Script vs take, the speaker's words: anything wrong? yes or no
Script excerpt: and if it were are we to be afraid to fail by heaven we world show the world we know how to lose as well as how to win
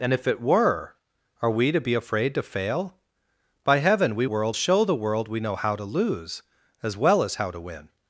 no